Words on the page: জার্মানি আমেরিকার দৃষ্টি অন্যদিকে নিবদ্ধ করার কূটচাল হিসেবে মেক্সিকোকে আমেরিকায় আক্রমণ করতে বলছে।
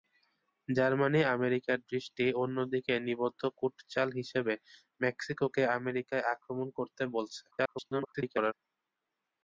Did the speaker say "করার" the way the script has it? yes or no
no